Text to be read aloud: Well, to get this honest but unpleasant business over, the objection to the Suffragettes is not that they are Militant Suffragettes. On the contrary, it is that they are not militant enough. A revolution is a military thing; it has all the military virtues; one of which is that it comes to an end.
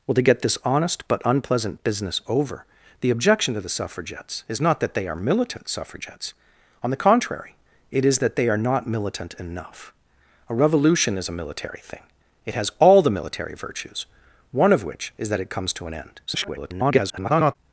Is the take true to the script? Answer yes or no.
no